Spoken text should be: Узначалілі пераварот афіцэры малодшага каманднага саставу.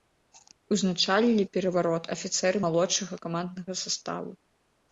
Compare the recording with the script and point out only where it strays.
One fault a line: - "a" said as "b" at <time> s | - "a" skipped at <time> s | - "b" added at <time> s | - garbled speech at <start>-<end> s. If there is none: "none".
none